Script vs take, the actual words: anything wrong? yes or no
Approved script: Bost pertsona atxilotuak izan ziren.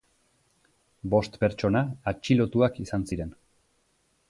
no